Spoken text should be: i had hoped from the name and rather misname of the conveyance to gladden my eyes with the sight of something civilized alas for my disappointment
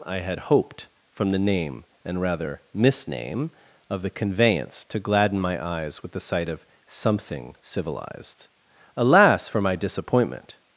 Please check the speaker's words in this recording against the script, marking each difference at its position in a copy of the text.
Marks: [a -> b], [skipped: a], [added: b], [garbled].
i had hoped from the name and rather misname of the conveyance to gladden my eyes with the sight of something civilized alas for my disappointment